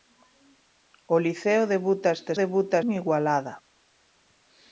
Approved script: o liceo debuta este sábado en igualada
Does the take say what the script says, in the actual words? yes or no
no